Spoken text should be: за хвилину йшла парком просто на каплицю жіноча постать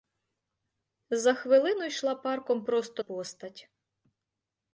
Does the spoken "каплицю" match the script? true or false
false